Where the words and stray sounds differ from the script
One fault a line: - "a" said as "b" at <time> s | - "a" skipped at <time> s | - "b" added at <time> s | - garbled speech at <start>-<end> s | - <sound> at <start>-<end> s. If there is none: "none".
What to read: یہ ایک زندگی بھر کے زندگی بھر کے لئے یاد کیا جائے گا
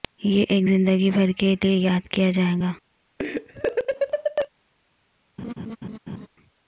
- "زندگی بھر کے" skipped at 1.5 s
- laugh at 3.2-4.5 s
- laugh at 5.4-6.3 s